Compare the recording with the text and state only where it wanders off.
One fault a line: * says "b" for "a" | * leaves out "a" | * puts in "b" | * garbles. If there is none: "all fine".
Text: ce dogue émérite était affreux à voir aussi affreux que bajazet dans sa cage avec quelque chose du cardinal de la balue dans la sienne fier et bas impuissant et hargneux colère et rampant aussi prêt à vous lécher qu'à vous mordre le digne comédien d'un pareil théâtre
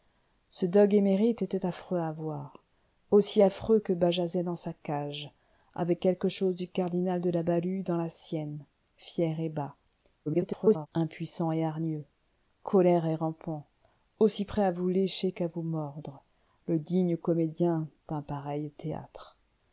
* garbles